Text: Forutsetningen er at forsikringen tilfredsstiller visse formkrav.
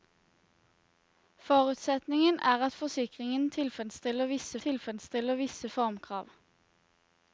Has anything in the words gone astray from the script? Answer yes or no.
yes